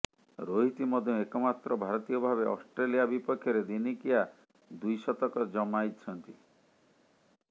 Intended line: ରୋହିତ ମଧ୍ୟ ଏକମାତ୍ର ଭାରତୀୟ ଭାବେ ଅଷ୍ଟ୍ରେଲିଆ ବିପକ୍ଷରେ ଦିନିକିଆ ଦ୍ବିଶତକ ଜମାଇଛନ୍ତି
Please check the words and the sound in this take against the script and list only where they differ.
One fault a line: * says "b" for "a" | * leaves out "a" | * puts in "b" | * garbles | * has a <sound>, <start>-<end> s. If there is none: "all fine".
all fine